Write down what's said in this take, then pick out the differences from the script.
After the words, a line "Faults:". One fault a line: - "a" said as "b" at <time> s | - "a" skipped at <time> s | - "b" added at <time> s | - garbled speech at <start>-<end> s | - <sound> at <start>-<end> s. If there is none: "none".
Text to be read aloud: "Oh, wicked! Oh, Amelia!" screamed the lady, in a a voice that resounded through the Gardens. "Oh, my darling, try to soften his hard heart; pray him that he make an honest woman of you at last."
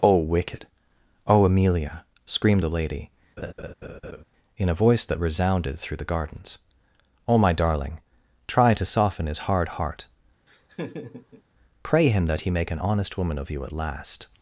"Oh, wicked! Oh, Amelia!" screamed the lady, in a voice that resounded through the Gardens. "Oh, my darling, try to soften his hard heart; pray him that he make an honest woman of you at last."
Faults:
- laugh at 3.4-4.2 s
- "a" skipped at 4.8 s
- laugh at 10.5-11.4 s